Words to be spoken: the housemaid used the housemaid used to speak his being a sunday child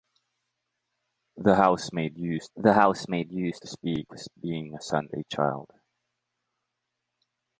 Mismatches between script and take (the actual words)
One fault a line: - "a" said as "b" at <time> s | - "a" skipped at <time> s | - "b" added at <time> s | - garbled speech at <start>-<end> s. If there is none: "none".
none